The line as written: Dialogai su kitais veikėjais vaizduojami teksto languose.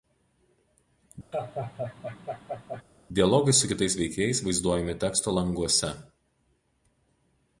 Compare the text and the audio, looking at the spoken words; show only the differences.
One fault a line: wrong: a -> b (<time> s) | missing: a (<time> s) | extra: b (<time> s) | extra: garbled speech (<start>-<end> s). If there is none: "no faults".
no faults